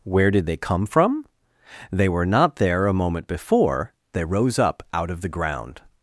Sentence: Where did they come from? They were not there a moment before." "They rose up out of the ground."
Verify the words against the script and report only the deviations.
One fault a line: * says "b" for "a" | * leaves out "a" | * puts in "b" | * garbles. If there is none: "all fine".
all fine